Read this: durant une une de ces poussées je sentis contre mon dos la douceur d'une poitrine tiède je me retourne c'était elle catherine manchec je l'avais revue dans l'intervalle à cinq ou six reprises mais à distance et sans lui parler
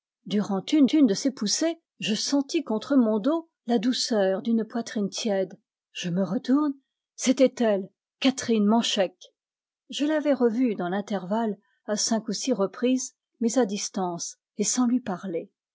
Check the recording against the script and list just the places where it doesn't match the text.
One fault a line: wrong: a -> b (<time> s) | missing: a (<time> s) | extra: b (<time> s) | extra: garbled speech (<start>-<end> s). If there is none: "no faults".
no faults